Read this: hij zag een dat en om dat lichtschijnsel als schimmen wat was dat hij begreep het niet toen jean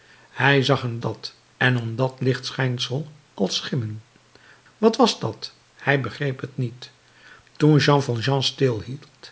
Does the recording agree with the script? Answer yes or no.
yes